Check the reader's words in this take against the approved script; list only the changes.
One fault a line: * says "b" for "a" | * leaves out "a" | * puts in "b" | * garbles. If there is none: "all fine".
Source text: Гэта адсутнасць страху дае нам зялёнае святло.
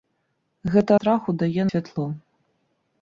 * leaves out "адсутнасць"
* leaves out "нам зялёнае"